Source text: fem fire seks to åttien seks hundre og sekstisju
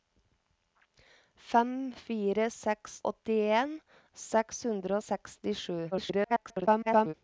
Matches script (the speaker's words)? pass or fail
fail